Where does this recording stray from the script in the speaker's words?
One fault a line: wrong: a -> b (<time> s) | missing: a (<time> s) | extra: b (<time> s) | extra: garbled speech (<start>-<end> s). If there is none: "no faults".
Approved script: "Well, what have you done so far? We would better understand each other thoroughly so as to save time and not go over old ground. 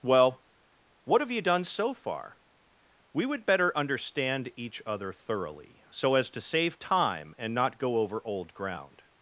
no faults